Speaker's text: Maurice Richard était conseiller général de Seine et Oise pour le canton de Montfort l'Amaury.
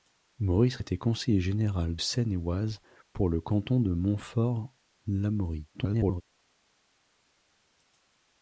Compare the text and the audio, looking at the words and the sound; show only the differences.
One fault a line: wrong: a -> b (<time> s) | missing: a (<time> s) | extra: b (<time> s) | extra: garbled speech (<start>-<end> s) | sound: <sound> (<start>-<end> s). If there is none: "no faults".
missing: Richard (0.8 s)
missing: de (2.0 s)
extra: garbled speech (5.7-6.2 s)